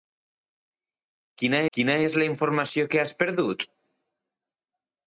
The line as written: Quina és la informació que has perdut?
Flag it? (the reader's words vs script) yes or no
yes